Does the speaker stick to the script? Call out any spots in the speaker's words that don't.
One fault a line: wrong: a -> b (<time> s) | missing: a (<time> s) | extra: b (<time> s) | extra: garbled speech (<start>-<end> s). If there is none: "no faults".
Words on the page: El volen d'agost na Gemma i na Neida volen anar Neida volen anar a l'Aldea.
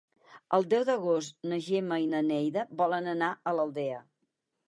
wrong: volen -> deu (0.7 s)
missing: Neida volen anar (3.3 s)